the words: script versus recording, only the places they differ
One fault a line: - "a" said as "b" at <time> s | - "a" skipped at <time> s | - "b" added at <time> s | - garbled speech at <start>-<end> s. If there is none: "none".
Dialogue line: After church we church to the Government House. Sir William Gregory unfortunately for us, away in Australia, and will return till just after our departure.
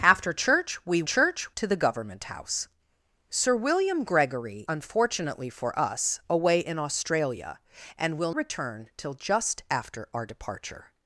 none